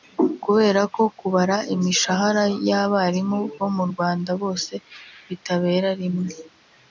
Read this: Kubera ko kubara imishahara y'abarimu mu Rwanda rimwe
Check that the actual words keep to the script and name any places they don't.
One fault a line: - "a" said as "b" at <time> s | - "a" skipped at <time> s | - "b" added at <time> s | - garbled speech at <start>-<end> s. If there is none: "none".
- "bo" added at 3.6 s
- "bose bitabera" added at 4.4 s